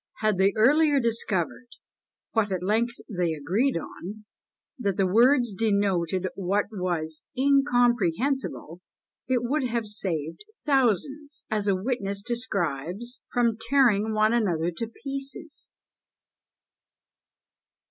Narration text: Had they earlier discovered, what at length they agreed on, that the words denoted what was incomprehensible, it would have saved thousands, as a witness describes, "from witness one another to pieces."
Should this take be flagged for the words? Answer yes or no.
yes